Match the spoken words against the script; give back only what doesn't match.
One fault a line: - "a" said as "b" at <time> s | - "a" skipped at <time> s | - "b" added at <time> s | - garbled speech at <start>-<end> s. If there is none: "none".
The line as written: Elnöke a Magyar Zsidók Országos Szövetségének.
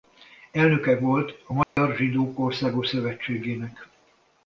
- "volt" added at 1.0 s